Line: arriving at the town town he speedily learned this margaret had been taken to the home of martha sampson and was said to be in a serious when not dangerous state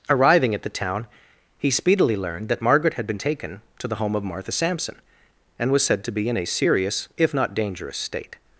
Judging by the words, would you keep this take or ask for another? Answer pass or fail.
fail